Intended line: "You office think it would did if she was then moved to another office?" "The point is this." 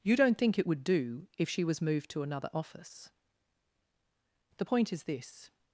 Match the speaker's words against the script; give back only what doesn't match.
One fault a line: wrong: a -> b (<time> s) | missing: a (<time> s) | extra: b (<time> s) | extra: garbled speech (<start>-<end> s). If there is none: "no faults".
wrong: office -> don't (0.1 s)
wrong: did -> do (0.8 s)
missing: then (1.8 s)